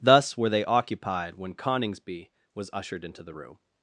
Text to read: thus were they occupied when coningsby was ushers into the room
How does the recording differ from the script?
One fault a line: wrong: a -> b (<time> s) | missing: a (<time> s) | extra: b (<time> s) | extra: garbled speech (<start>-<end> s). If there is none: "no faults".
wrong: ushers -> ushered (2.7 s)